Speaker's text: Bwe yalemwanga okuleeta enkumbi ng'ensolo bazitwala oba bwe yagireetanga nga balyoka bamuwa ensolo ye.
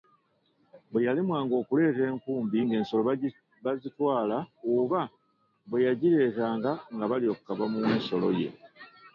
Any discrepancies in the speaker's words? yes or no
no